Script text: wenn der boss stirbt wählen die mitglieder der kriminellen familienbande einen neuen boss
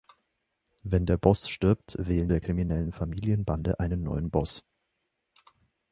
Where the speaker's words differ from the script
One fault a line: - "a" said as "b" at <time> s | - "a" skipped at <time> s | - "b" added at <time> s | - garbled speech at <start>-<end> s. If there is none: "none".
- "die mitglieder" skipped at 2.3 s